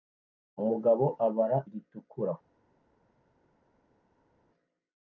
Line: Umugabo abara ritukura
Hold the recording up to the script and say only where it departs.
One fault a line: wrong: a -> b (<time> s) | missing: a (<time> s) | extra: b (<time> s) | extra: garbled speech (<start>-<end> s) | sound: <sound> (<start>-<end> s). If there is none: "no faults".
no faults